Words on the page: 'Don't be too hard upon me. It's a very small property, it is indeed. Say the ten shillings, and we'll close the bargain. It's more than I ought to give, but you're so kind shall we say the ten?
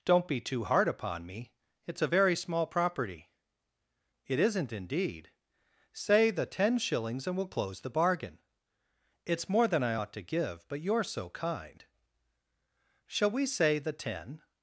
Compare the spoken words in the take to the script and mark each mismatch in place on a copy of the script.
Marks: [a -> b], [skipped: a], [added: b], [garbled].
'Don't be too hard upon me. It's a very small property, it [is -> isn't] indeed. Say the ten shillings, and we'll close the bargain. It's more than I ought to give, but you're so kind shall we say the ten?